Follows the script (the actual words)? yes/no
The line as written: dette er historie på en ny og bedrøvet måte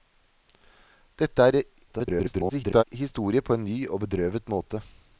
no